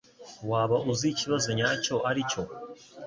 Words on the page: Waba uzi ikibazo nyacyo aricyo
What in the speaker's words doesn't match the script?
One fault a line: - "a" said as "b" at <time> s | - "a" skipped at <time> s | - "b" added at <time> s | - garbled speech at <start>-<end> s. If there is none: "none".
none